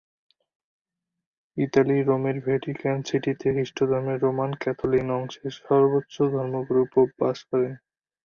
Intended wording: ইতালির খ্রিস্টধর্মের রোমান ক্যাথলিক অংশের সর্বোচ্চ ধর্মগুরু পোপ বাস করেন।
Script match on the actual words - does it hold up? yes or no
no